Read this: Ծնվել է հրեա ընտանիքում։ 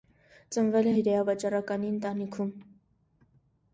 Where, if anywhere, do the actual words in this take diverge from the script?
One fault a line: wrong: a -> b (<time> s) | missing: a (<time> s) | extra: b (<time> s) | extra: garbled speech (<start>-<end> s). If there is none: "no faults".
extra: վաճառականի (1.3 s)